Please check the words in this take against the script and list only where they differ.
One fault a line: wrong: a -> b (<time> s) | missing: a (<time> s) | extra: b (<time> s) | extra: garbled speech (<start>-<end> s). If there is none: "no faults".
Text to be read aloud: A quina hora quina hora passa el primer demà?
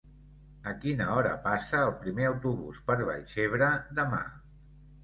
missing: quina hora (1.4 s)
extra: autobús per Vallcebre (2.3 s)